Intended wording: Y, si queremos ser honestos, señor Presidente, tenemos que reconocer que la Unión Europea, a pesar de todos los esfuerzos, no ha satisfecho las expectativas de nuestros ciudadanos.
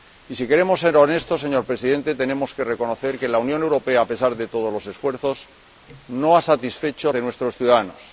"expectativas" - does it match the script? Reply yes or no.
no